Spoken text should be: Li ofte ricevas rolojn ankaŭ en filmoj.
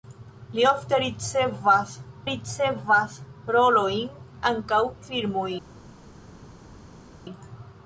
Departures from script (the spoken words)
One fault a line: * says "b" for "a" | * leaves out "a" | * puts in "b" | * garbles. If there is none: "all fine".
* puts in "ricevas"
* leaves out "en"